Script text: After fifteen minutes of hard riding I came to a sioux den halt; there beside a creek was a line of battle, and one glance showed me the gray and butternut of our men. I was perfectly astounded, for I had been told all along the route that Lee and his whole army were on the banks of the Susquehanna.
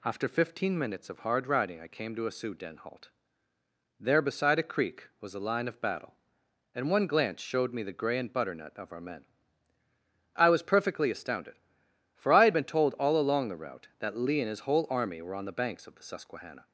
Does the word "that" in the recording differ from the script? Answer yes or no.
no